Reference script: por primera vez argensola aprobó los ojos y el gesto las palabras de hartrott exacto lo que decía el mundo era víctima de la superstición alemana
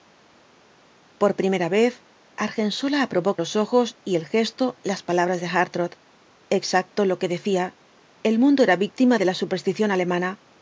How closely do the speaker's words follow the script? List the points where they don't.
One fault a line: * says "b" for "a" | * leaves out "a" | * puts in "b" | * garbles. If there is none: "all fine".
all fine